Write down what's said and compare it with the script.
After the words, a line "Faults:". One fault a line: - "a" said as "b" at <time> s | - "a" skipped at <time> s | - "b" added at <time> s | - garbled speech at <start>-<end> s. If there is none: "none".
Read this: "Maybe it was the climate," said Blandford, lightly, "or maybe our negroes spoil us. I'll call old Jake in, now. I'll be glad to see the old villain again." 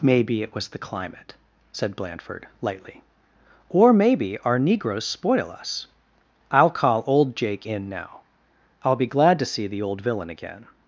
"Maybe it was the climate," said Blandford, lightly, "or maybe our negroes spoil us. I'll call old Jake in, now. I'll be glad to see the old villain again."
Faults:
none